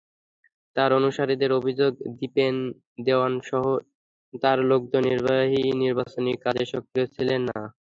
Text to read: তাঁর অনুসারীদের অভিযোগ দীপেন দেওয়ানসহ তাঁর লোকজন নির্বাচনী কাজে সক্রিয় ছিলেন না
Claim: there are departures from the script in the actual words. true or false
false